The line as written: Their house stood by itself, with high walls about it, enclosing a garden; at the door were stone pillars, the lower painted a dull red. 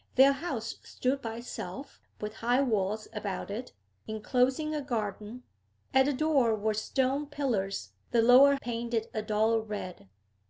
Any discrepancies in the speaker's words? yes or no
no